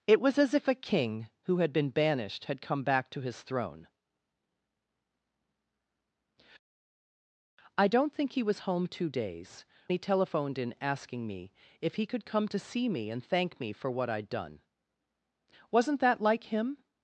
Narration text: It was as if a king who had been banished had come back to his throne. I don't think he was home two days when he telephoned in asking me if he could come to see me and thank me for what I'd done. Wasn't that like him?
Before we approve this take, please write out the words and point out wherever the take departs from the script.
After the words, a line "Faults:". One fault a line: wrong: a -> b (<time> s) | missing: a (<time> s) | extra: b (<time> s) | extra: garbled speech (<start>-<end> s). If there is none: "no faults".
It was as if a king who had been banished had come back to his throne. I don't think he was home two days he telephoned in asking me if he could come to see me and thank me for what I'd done. Wasn't that like him?
Faults:
missing: when (9.7 s)